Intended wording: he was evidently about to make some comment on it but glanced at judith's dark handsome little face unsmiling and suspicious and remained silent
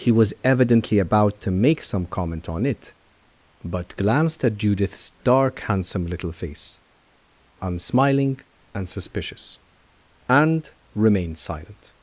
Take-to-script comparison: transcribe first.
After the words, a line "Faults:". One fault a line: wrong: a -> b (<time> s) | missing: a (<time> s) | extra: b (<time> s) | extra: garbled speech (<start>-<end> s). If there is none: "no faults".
he was evidently about to make some comment on it but glanced at judith's dark handsome little face unsmiling and suspicious and remained silent
Faults:
no faults